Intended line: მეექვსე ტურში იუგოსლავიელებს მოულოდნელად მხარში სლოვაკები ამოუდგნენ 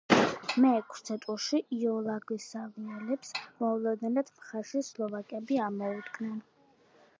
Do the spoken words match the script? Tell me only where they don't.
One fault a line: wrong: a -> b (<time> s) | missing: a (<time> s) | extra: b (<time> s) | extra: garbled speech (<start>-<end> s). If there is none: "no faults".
no faults